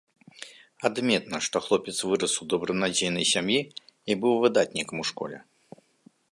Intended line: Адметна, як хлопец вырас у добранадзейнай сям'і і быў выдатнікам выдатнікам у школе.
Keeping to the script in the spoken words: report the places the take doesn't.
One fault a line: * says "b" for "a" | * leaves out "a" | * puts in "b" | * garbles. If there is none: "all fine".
* says "што" for "як"
* leaves out "выдатнікам"